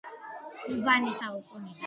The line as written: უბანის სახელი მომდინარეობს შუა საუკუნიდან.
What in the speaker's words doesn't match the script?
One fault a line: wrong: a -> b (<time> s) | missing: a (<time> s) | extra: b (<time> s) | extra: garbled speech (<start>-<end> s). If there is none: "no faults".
missing: სახელი მომდინარეობს შუა (1.2 s)